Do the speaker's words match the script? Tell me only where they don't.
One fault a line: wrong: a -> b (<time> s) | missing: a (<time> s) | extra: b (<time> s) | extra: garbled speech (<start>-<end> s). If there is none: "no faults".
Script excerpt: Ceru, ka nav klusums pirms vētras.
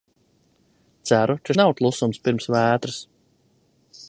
no faults